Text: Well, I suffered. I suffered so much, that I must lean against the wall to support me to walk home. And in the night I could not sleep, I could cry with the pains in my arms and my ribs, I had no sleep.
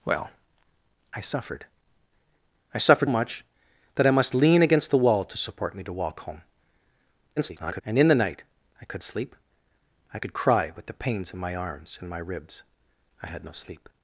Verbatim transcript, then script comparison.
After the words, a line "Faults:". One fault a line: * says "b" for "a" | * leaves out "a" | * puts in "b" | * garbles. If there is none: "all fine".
Well, I suffered. I suffered much, that I must lean against the wall to support me to walk home. [garbled] And in the night I could sleep, I could cry with the pains in my arms and my ribs, I had no sleep.
Faults:
* leaves out "so"
* garbles
* leaves out "not"